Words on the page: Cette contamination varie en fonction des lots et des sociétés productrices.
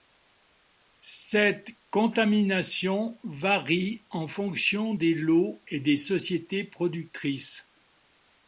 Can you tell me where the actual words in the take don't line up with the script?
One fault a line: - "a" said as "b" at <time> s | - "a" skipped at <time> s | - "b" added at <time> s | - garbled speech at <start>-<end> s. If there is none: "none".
none